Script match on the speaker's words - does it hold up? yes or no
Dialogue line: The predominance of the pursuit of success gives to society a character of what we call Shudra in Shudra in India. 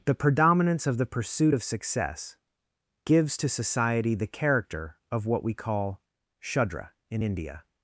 no